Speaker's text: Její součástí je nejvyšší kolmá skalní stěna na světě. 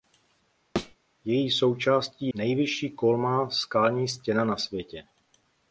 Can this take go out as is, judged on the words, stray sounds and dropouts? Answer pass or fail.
fail